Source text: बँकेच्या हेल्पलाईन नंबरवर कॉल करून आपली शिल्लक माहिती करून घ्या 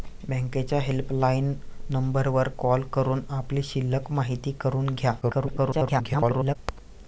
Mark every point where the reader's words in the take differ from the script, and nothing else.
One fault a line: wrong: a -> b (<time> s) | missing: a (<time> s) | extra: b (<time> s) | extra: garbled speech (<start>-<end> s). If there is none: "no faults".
extra: garbled speech (5.2-6.6 s)